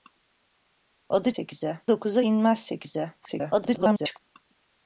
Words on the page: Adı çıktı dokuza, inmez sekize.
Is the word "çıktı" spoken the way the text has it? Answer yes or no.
no